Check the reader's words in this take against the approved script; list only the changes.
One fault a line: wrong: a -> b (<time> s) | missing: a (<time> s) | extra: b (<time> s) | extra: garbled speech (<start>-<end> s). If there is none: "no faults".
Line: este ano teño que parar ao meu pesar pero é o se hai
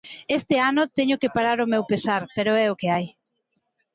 wrong: se -> que (2.8 s)